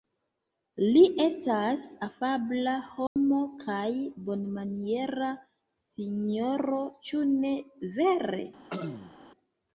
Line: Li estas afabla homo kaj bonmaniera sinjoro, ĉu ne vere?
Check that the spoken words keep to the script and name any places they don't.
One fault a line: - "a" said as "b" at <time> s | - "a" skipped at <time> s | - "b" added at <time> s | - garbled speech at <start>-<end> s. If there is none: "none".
none